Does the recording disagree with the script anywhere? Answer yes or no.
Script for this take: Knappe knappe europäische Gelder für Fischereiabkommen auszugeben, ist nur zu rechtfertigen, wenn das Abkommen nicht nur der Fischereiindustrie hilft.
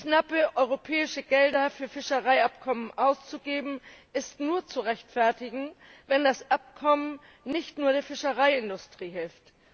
yes